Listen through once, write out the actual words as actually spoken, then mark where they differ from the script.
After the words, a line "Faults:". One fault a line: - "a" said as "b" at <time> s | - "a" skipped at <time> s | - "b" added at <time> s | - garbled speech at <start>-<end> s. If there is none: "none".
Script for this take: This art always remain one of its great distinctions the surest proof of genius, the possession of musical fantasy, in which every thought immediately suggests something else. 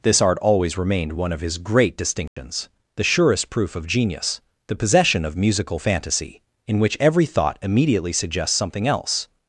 This art always remained one of his great distinctions the surest proof of genius, the possession of musical fantasy, in which every thought immediately suggests something else.
Faults:
- "remain" said as "remained" at 0.8 s
- "its" said as "his" at 1.4 s